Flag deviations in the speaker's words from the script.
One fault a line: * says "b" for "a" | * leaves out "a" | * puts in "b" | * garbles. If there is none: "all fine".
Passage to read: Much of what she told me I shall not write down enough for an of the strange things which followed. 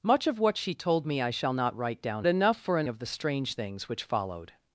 all fine